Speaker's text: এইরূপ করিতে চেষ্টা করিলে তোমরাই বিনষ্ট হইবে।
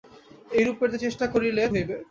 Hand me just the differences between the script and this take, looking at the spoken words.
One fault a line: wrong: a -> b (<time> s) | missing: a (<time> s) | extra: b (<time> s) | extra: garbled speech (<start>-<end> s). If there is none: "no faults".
missing: তোমরাই বিনষ্ট (1.6 s)